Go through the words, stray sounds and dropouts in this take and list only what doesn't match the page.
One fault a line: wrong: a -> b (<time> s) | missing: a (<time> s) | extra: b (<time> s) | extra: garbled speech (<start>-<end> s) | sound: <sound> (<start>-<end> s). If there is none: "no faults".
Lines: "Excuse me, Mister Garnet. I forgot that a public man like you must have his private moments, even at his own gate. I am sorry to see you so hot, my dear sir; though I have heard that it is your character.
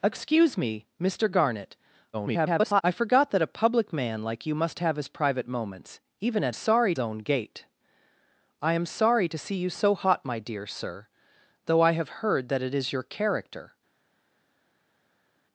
extra: garbled speech (2.1-2.8 s)
wrong: his -> sorry (6.5 s)